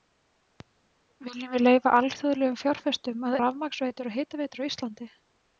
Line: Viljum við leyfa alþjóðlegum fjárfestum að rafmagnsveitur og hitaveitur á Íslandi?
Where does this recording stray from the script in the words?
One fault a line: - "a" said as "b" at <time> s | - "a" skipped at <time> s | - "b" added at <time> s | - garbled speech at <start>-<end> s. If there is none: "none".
none